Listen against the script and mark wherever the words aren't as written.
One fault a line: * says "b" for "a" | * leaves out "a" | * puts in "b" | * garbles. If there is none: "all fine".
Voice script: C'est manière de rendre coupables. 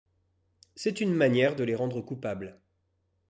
* puts in "une"
* puts in "les"